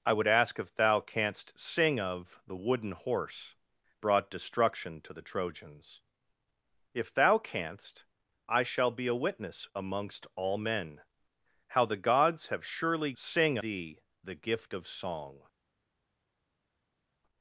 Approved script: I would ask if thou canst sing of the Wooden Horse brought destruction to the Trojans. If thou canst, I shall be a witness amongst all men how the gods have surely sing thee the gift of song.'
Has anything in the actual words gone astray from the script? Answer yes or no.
no